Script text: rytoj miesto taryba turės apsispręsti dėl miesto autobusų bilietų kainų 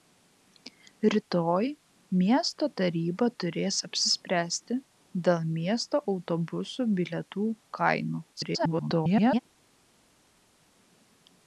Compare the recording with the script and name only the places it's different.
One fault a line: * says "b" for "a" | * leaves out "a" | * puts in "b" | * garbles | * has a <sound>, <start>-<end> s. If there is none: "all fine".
* garbles